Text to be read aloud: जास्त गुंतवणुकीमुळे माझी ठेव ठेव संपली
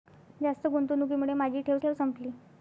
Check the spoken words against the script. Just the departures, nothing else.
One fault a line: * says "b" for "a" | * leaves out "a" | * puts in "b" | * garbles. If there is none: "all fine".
all fine